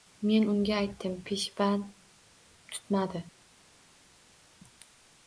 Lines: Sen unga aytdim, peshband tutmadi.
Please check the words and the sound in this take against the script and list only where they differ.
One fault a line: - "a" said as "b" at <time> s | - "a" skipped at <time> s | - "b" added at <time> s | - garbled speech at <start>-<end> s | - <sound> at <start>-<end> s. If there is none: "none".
- "Sen" said as "Men" at 0.3 s